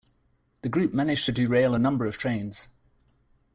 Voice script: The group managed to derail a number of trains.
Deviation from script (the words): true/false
false